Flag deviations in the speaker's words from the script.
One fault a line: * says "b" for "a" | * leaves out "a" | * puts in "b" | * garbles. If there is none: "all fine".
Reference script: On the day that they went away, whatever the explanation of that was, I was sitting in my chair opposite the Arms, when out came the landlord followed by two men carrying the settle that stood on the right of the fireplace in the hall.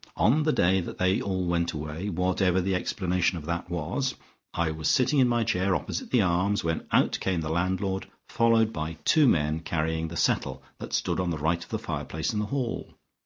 * puts in "all"